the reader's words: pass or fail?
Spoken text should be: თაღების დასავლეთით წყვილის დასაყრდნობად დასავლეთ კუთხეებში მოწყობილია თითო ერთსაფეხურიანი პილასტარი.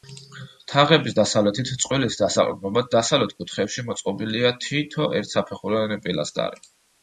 pass